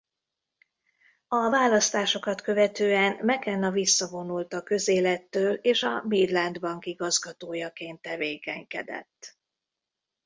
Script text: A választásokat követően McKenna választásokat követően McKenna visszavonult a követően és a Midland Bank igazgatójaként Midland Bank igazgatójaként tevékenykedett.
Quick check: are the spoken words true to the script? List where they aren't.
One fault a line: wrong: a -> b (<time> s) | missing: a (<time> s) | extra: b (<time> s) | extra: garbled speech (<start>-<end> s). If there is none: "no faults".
missing: választásokat követően McKenna (3.7 s)
wrong: követően -> közélettől (4.6 s)
missing: Midland Bank igazgatójaként (8.0 s)